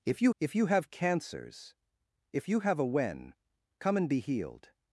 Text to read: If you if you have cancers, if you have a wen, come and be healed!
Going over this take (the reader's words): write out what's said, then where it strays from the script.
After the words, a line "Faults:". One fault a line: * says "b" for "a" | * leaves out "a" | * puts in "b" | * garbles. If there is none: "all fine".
If you if you have cancers, if you have a wen, come and be healed!
Faults:
all fine